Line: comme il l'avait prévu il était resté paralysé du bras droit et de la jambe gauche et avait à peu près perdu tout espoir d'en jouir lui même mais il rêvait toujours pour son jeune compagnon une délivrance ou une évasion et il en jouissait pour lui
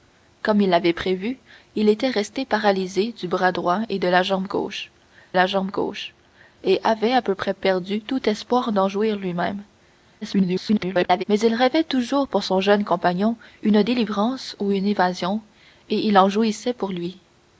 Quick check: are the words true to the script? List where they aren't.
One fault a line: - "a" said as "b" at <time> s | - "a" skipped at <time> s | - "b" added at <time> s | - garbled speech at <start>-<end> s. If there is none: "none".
- "la jambe gauche" added at 5.3 s
- garbled speech at 10.2-11.2 s